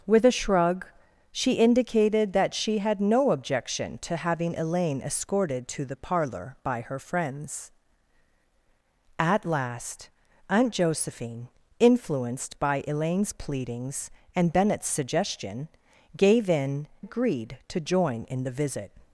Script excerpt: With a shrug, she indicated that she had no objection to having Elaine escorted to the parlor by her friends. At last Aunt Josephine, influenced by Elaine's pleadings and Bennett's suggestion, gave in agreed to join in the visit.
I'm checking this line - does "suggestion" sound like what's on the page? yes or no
yes